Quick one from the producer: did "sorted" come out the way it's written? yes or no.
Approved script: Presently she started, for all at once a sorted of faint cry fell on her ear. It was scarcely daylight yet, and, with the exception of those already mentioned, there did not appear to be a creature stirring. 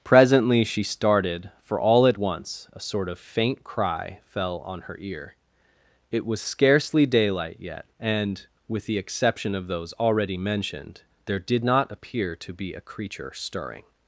no